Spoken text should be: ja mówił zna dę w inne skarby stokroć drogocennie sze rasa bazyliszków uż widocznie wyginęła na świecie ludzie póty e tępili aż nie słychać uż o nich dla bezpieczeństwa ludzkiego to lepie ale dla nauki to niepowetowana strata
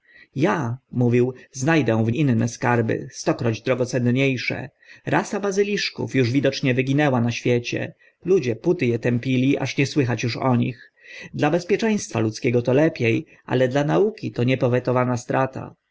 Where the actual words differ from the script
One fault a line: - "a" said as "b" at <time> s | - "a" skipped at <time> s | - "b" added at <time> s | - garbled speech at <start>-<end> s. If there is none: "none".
none